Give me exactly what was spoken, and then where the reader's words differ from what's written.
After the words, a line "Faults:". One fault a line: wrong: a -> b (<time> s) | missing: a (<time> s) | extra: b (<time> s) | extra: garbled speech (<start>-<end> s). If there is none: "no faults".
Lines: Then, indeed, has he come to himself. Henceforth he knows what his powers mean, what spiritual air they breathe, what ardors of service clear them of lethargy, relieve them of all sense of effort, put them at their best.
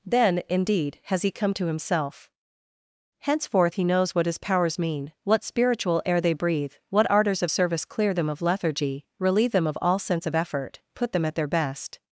Then, indeed, has he come to himself. Henceforth he knows what his powers mean, what spiritual air they breathe, what ardors of service clear them of lethargy, relieve them of all sense of effort, put them at their best.
Faults:
no faults